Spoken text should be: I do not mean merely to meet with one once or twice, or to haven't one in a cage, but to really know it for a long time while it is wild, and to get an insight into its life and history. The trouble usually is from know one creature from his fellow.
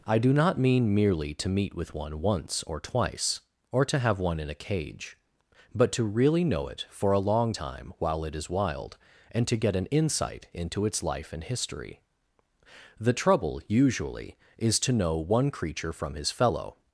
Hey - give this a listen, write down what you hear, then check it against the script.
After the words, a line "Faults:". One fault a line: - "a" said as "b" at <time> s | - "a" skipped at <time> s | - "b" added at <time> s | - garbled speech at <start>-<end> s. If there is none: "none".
I do not mean merely to meet with one once or twice, or to have one in a cage, but to really know it for a long time while it is wild, and to get an insight into its life and history. The trouble usually is to know one creature from his fellow.
Faults:
- "haven't" said as "have" at 4.0 s
- "from" said as "to" at 14.8 s